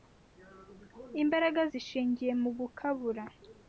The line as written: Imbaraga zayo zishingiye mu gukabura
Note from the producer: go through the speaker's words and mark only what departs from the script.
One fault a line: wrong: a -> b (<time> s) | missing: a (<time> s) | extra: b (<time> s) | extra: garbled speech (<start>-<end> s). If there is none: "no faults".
missing: zayo (1.6 s)